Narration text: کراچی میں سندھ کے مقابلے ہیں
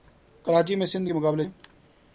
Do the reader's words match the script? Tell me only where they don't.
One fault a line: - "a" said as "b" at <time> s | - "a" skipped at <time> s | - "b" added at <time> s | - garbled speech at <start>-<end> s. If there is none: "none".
none